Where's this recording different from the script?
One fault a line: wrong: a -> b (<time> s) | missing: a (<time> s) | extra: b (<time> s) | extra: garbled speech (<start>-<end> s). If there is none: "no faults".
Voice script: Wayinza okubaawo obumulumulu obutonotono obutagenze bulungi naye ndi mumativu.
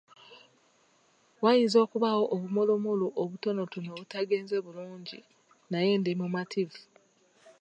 no faults